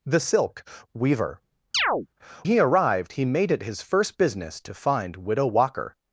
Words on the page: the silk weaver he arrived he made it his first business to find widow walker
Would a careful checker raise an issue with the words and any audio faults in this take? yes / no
yes